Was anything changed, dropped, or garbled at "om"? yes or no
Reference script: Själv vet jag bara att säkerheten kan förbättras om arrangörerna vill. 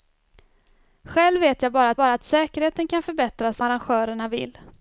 yes